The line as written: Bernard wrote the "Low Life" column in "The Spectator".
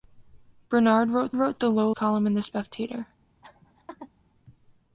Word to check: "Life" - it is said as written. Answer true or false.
false